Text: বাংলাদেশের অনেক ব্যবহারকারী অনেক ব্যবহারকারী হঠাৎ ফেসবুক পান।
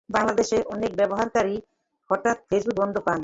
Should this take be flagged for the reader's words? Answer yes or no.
yes